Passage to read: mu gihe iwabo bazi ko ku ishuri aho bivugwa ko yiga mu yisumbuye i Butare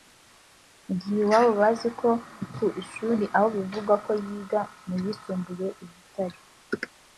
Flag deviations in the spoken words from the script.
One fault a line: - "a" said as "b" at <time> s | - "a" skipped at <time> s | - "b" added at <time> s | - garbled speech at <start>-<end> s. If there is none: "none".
none